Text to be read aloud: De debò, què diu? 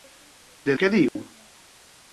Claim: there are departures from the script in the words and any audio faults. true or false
true